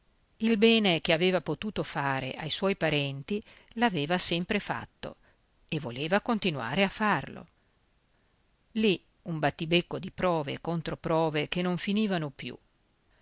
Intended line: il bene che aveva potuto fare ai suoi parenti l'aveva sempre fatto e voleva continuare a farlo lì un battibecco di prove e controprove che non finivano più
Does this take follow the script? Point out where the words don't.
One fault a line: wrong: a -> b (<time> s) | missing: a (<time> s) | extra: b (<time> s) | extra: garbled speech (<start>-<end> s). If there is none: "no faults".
no faults